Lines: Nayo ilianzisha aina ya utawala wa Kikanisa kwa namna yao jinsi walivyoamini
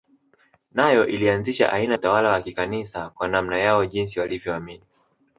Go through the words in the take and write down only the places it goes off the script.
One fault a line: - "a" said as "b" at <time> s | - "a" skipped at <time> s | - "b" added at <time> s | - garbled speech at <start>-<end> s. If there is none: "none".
- "ya" skipped at 2.0 s